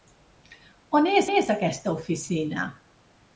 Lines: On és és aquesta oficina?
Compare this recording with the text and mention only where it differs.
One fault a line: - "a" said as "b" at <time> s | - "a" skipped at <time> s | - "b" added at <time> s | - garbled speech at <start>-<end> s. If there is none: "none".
none